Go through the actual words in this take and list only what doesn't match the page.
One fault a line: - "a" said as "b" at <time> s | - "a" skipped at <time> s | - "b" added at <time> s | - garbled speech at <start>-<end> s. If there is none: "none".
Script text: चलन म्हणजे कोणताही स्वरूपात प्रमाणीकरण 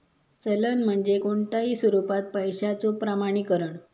- "पैशाचो" added at 2.3 s